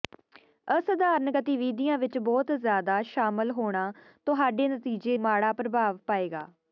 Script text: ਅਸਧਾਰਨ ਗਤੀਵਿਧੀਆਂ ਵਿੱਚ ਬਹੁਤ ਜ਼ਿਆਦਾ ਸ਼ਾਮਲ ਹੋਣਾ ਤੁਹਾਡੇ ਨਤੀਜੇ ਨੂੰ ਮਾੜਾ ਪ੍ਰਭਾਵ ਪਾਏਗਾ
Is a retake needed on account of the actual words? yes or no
yes